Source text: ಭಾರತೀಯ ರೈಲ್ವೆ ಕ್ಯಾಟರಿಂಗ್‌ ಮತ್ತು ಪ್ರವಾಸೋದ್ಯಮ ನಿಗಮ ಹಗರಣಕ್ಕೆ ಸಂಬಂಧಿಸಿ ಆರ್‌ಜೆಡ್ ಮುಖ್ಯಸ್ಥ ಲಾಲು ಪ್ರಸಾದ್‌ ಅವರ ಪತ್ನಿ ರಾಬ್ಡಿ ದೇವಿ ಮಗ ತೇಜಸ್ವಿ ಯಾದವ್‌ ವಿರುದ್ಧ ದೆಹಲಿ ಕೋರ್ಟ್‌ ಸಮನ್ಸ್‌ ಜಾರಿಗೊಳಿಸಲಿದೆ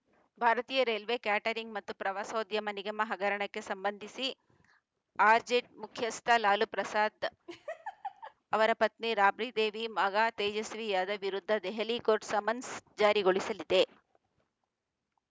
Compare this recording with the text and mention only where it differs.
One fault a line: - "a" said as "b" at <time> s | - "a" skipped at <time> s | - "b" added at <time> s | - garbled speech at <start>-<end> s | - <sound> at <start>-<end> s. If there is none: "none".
- laugh at 7.5-8.3 s